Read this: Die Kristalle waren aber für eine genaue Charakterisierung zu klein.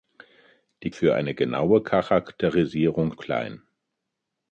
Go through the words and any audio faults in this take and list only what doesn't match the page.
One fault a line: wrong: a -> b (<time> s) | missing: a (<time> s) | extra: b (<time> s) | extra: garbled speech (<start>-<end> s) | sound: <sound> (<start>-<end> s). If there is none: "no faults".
missing: Kristalle waren aber (0.9 s)
missing: zu (3.2 s)